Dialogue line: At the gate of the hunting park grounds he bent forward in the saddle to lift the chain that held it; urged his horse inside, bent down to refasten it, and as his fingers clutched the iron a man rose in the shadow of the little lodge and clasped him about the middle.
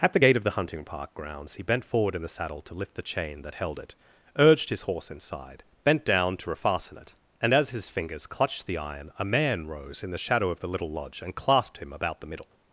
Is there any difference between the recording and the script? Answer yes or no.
no